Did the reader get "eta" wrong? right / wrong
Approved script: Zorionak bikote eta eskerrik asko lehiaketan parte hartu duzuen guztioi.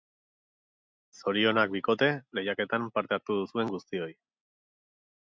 wrong